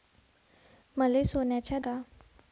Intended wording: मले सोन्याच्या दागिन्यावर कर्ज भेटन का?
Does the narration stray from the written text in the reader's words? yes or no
yes